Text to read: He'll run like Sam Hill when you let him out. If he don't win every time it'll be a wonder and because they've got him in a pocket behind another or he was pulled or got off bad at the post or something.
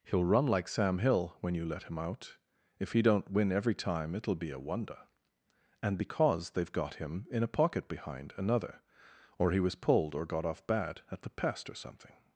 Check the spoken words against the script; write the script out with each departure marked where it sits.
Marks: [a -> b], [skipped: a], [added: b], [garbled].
He'll run like Sam Hill when you let him out. If he don't win every time it'll be a wonder and because they've got him in a pocket behind another or he was pulled or got off bad at the [post -> pest] or something.